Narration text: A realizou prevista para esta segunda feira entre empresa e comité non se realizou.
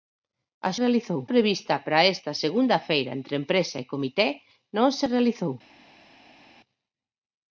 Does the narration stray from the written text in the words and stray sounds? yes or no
no